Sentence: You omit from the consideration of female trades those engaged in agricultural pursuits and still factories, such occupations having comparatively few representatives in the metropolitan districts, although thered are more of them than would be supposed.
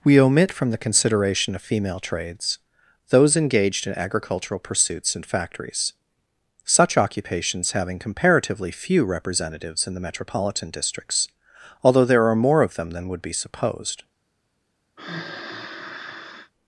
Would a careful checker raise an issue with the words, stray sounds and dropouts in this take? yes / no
yes